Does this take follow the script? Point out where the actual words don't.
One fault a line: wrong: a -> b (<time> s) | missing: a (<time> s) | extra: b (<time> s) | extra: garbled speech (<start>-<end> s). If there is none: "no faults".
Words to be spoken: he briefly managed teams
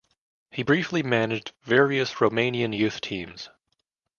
extra: various romanian youth (1.6 s)